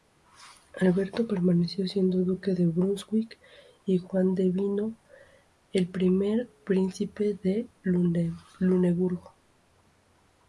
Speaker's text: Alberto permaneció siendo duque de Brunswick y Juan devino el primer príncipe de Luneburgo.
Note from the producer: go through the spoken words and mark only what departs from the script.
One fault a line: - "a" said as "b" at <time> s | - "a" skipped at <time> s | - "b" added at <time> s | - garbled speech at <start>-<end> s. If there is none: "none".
none